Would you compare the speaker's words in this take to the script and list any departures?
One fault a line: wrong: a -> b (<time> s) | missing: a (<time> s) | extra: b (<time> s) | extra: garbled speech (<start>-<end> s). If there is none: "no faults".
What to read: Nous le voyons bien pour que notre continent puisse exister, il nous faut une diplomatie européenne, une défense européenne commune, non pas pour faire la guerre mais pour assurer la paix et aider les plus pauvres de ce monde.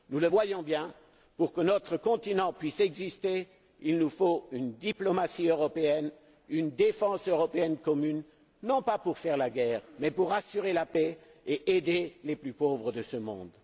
no faults